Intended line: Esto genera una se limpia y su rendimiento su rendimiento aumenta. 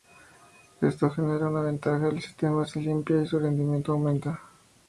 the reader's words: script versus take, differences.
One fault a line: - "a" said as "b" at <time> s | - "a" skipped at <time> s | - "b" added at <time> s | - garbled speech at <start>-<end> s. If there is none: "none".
- "ventaja el sistema" added at 1.6 s
- "su rendimiento" skipped at 3.9 s